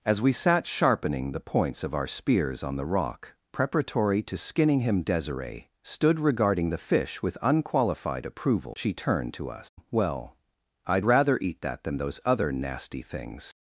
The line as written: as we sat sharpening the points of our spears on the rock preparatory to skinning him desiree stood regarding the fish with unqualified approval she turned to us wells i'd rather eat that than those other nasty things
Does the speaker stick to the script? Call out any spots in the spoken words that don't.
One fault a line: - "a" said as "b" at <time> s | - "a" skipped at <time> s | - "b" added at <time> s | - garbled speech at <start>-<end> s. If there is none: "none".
- "wells" said as "well" at 9.9 s